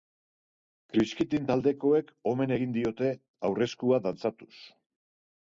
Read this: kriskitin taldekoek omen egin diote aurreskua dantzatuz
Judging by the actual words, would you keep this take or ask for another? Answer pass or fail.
pass